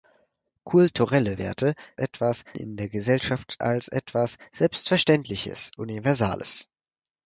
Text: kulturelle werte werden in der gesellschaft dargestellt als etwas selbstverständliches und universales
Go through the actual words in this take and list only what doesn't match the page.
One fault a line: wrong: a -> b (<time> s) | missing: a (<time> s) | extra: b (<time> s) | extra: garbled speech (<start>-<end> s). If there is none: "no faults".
wrong: werden -> etwas (1.9 s)
missing: dargestellt (3.6 s)
missing: und (5.7 s)